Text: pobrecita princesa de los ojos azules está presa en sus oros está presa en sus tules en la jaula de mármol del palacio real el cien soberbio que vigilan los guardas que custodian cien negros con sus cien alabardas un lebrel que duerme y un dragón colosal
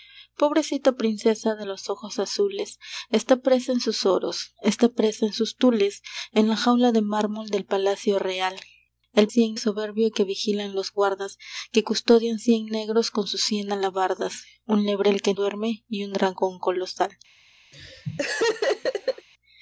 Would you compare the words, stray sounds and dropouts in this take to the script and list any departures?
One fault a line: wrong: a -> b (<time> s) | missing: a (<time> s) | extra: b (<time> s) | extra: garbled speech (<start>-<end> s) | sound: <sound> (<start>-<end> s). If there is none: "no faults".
sound: laugh (17.7-19.3 s)